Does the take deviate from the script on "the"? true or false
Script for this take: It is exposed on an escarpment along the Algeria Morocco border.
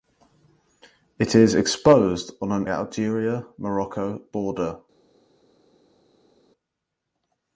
true